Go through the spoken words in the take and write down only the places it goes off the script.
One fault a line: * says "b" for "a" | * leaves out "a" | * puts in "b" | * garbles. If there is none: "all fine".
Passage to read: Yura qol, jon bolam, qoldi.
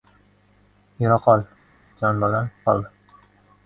all fine